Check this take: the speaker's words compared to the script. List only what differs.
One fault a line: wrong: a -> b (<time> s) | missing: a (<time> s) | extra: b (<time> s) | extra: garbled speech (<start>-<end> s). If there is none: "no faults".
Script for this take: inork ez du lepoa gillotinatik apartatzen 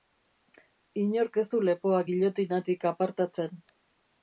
no faults